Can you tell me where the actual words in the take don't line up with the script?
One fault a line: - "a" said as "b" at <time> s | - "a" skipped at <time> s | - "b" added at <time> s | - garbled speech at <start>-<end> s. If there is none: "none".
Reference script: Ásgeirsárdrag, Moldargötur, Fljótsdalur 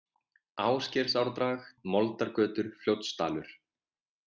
none